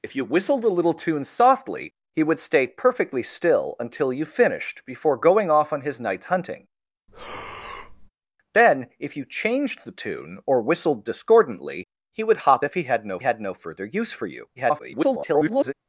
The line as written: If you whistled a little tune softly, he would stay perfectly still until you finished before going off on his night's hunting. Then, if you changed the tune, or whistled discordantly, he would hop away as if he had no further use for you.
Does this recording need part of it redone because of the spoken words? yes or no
yes